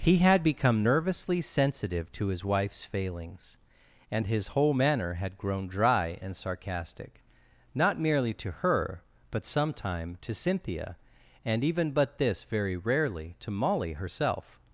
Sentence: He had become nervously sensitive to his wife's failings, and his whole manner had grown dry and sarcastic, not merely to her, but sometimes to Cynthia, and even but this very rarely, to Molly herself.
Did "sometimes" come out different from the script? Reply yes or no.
yes